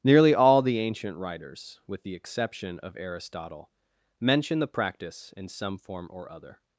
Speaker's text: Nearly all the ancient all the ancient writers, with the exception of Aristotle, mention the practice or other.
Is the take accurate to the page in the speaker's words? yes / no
no